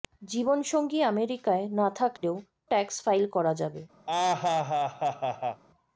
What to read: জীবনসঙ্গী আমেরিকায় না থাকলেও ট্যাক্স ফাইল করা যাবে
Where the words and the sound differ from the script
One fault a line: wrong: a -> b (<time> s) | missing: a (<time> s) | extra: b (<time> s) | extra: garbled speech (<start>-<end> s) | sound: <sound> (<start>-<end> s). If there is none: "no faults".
sound: dropout (2.2-2.2 s)
sound: laugh (4.1-5.6 s)